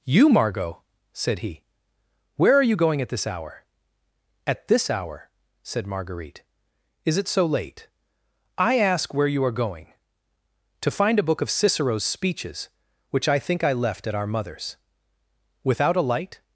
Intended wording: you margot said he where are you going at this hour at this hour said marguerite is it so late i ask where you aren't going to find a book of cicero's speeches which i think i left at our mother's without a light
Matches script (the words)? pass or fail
fail